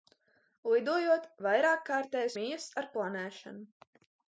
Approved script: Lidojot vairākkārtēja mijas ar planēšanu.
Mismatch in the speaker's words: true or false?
false